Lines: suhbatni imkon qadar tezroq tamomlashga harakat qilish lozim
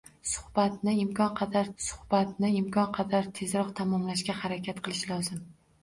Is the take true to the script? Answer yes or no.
no